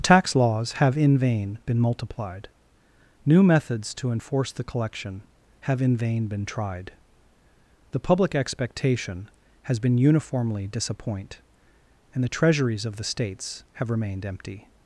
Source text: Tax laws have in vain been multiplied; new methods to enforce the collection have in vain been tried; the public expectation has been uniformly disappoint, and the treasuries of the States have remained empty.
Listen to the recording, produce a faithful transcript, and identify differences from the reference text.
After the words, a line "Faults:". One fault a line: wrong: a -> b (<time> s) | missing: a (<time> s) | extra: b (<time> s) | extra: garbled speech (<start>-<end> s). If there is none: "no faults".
Tax laws have in vain been multiplied; new methods to enforce the collection have in vain been tried; the public expectation has been uniformly disappoint, and the treasuries of the States have remained empty.
Faults:
no faults